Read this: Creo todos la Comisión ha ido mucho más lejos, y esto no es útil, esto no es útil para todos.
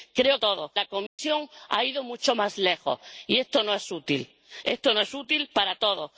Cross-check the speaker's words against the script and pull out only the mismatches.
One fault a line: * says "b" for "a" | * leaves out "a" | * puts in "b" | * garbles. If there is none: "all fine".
all fine